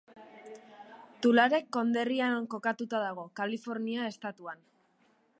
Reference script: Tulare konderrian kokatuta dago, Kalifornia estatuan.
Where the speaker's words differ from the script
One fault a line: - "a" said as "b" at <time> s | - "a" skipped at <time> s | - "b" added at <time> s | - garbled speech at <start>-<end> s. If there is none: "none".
none